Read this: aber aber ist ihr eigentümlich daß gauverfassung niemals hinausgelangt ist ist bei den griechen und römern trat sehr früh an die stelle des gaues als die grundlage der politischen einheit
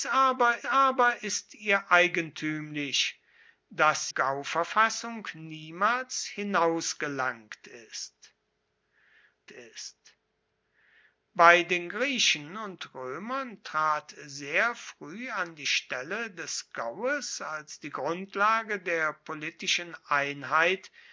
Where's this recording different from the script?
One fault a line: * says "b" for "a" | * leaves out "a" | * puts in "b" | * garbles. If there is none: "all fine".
all fine